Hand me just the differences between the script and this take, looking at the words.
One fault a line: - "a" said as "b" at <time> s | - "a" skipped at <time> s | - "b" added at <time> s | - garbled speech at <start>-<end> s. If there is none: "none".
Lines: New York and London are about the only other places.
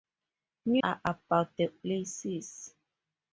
- "York and London" skipped at 0.8 s
- "only other" skipped at 1.7 s